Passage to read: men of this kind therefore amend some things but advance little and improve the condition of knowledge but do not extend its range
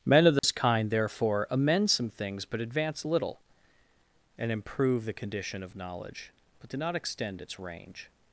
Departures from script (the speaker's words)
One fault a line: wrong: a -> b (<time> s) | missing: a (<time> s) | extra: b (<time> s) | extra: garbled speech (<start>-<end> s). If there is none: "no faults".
no faults